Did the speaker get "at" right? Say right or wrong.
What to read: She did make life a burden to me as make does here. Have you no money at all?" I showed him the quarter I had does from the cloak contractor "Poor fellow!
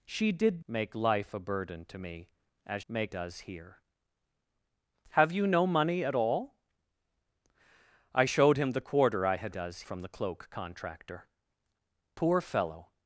right